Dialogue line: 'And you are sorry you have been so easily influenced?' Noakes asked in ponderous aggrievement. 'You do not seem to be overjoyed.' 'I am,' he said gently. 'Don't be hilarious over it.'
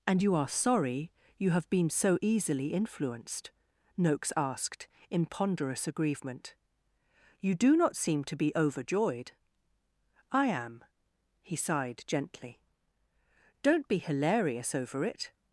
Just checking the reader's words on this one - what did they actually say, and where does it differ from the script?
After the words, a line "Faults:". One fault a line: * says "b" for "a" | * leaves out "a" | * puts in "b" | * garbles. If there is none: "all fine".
'And you are sorry you have been so easily influenced?' Noakes asked in ponderous aggrievement. 'You do not seem to be overjoyed.' 'I am,' he sighed gently. 'Don't be hilarious over it.'
Faults:
* says "sighed" for "said"